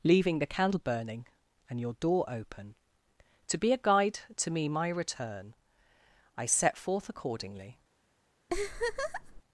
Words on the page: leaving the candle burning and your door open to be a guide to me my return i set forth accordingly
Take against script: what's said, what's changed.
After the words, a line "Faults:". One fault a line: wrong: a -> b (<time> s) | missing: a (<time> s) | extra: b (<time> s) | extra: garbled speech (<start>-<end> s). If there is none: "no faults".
leaving the candle burning and your door open to be a guide to me my return i set forth accordingly
Faults:
no faults